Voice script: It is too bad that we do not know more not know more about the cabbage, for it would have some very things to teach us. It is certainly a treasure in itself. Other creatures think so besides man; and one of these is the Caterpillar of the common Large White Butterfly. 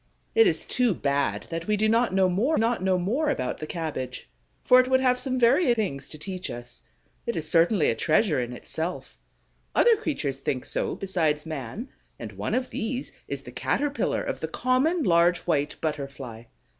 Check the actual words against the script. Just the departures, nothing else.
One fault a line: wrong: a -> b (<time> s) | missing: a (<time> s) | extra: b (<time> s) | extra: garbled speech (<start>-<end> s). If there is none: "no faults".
no faults